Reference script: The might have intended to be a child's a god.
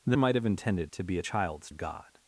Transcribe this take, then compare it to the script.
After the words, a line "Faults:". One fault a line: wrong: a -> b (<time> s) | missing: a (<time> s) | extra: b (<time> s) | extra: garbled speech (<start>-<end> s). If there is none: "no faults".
The might have intended to be a child's a god.
Faults:
no faults